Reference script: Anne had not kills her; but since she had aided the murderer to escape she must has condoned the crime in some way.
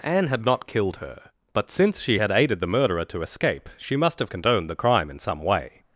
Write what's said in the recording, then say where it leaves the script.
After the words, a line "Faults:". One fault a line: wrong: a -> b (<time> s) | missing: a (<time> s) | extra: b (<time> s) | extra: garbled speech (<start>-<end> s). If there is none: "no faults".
Anne had not killed her; but since she had aided the murderer to escape she must have condoned the crime in some way.
Faults:
wrong: kills -> killed (0.7 s)
wrong: has -> have (4.2 s)